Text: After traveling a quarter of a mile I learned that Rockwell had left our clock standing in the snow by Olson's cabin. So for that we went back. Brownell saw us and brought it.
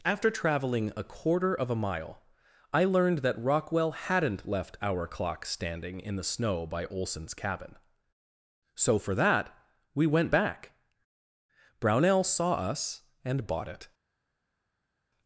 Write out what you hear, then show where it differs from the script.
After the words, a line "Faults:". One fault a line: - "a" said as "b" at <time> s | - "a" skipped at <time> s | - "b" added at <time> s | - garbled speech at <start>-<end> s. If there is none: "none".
After traveling a quarter of a mile I learned that Rockwell hadn't left our clock standing in the snow by Olson's cabin. So for that we went back. Brownell saw us and bought it.
Faults:
- "had" said as "hadn't" at 3.9 s
- "brought" said as "bought" at 13.5 s